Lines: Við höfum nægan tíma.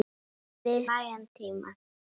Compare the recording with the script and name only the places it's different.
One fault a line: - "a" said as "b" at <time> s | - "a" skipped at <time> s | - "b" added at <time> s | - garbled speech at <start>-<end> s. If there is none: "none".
- "höfum" skipped at 0.9 s